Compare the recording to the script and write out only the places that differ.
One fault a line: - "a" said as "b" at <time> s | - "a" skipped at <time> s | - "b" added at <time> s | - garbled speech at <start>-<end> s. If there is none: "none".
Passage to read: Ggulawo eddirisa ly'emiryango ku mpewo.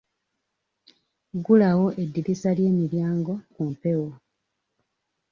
none